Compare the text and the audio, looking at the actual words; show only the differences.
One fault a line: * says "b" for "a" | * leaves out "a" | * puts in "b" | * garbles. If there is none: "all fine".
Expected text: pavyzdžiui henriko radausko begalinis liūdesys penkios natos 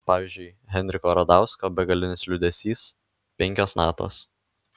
all fine